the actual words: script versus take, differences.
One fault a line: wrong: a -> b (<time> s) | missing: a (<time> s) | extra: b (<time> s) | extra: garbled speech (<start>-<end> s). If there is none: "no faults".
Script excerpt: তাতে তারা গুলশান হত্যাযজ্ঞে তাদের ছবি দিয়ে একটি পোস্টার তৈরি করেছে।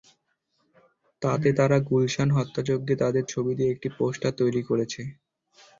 no faults